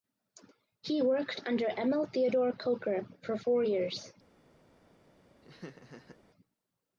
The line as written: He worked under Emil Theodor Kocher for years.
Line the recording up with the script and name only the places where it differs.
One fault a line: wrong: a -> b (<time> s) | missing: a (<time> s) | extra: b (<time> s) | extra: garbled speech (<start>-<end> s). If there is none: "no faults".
extra: four (3.4 s)